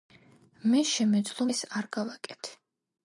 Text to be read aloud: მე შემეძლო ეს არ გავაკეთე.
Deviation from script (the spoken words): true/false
false